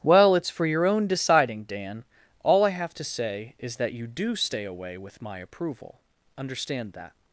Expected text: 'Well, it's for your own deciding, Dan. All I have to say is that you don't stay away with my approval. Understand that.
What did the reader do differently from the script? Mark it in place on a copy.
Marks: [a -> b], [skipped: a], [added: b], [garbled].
'Well, it's for your own deciding, Dan. All I have to say is that you [don't -> do] stay away with my approval. Understand that.